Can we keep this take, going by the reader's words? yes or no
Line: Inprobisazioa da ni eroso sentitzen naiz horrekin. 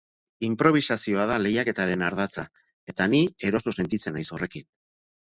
no